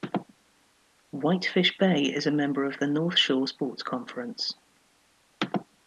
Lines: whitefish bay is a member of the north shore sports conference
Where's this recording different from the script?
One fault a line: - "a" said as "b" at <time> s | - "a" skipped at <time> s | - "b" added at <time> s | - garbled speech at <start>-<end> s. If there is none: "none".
none